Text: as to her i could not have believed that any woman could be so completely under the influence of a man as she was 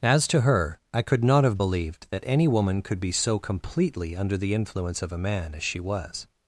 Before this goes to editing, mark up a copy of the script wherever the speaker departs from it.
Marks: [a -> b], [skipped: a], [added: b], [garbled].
as to her i could not have believed that any woman could be so completely under the influence of a man as she was